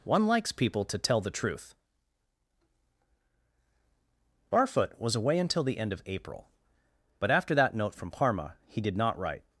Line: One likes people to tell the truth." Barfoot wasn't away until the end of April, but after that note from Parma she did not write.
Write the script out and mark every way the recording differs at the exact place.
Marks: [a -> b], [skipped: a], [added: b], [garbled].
One likes people to tell the truth." Barfoot [wasn't -> was] away until the end of April, but after that note from Parma [she -> he] did not write.